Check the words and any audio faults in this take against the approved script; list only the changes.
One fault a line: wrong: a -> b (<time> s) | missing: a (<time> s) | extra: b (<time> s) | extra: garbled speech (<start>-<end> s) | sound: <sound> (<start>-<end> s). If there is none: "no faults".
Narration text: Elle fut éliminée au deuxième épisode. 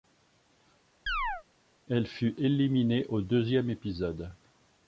sound: chirp (1.1-1.4 s)